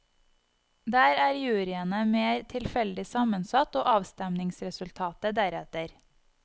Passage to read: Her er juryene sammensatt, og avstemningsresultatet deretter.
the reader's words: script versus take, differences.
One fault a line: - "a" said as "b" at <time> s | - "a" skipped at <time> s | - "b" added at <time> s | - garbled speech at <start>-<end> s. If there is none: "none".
- "Her" said as "Der" at 0.9 s
- "mer tilfeldig" added at 2.1 s